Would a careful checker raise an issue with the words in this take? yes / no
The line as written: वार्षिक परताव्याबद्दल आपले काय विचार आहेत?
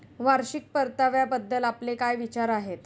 no